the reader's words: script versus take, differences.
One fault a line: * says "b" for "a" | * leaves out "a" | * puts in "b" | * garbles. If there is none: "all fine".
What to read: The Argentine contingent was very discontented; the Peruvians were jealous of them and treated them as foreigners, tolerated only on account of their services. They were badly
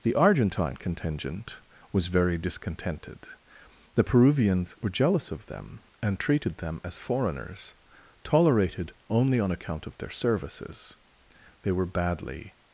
all fine